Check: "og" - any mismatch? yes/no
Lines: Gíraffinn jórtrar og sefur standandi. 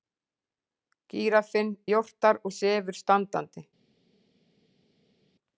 no